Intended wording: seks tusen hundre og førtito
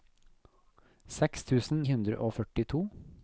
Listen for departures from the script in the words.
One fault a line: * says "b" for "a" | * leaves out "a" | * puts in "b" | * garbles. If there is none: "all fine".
all fine